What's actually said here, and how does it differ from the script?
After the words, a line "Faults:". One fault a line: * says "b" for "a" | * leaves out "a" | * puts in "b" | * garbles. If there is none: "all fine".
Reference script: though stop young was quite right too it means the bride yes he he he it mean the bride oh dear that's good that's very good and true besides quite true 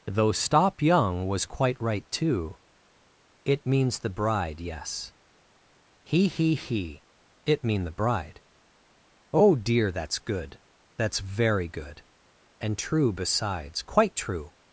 though stop young was quite right too it means the bride yes he he he it mean the bride oh dear that's good that's very good and true besides quite true
Faults:
all fine